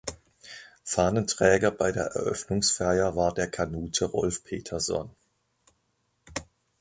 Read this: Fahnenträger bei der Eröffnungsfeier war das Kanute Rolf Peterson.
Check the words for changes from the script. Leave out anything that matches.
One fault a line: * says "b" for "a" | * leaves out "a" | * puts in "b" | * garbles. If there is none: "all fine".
* says "der" for "das"